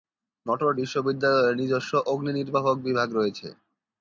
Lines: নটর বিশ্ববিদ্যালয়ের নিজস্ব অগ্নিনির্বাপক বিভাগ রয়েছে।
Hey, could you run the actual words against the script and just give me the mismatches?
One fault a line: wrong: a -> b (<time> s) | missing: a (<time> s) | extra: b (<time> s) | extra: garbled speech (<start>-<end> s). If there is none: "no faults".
no faults